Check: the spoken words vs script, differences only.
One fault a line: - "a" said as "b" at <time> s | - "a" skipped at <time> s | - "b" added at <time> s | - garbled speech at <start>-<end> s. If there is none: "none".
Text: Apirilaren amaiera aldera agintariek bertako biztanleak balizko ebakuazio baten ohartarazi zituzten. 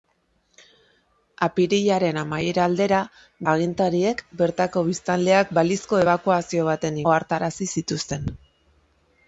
none